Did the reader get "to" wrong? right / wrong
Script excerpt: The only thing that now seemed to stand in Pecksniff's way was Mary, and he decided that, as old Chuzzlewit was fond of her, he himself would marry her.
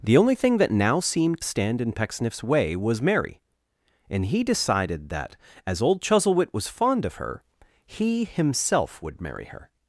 wrong